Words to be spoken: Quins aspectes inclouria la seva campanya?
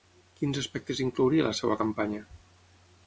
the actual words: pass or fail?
pass